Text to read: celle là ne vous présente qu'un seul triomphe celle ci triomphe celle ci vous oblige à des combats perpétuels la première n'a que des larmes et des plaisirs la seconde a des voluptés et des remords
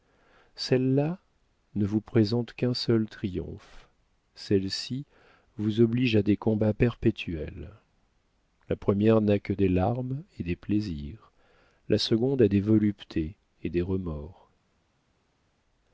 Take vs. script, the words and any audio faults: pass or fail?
fail